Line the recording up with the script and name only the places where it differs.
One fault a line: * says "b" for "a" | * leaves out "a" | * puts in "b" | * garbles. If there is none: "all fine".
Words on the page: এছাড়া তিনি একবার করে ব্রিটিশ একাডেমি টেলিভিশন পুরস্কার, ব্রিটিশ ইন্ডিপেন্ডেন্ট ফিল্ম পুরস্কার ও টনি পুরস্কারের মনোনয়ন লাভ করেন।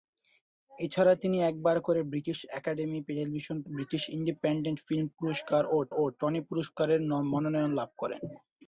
* leaves out "পুরস্কার"
* puts in "ও"